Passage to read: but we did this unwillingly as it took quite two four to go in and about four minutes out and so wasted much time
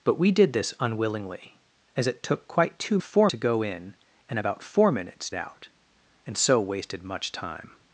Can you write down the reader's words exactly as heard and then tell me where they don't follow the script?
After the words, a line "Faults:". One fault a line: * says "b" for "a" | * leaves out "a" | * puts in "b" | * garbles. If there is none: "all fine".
but we did this unwillingly as it took quite two four to go in and about four minutes out and so wasted much time
Faults:
all fine